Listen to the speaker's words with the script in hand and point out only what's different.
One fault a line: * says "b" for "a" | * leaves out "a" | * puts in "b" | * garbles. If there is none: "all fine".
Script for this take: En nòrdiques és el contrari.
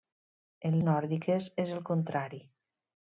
all fine